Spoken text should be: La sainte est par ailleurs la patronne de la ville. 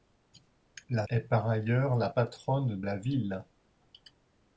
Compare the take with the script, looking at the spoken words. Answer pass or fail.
fail